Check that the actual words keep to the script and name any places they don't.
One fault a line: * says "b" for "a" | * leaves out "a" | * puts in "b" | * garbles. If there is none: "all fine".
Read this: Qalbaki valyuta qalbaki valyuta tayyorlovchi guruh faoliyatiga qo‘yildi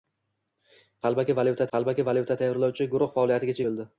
all fine